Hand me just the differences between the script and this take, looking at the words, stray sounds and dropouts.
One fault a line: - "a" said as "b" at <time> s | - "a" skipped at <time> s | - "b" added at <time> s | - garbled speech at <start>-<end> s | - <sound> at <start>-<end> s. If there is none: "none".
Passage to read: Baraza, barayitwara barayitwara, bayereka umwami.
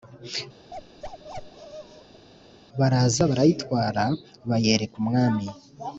- bark at 0.7-2.3 s
- "barayitwara" skipped at 4.0 s